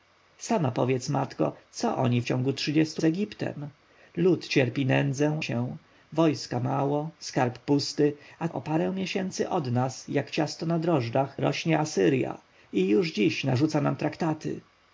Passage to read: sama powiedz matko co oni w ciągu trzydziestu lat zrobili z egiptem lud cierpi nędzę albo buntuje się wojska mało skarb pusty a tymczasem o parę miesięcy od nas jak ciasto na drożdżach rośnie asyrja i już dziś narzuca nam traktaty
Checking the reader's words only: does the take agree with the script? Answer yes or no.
no